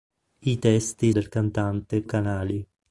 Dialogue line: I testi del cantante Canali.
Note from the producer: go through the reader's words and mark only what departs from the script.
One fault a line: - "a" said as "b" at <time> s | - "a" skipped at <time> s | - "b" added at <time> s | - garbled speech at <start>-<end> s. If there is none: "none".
none